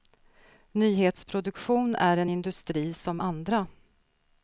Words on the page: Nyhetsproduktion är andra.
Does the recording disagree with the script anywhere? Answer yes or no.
yes